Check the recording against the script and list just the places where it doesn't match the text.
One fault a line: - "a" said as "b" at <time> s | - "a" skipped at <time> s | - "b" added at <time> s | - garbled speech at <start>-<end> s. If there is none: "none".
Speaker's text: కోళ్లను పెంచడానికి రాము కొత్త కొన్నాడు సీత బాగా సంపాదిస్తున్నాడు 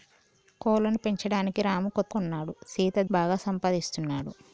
none